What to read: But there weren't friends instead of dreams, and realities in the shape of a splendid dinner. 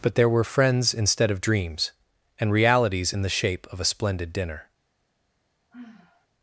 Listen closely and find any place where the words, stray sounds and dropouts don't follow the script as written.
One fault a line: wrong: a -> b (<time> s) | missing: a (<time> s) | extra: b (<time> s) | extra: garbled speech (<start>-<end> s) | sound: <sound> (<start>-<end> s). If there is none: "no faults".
wrong: weren't -> were (0.3 s)
sound: sigh (5.7-6.3 s)